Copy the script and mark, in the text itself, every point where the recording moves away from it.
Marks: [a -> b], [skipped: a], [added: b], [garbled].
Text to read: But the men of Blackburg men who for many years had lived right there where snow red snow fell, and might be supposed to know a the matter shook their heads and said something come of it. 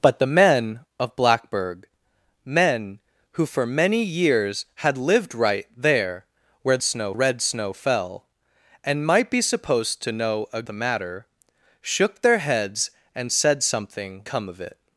But the men of Blackburg men who for many years had lived right there where snow red snow fell, and might be supposed to know a the matter shook their heads and said something come of it.